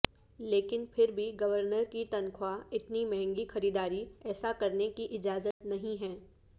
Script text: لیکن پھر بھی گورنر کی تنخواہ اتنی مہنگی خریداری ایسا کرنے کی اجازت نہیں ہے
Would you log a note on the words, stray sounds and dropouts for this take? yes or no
yes